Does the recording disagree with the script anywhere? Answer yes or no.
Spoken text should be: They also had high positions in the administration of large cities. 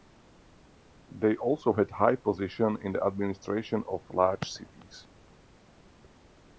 no